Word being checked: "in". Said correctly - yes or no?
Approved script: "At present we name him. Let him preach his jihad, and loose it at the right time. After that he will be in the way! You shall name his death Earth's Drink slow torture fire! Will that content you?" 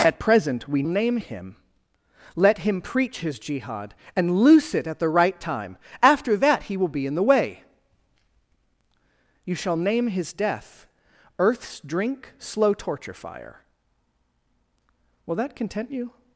yes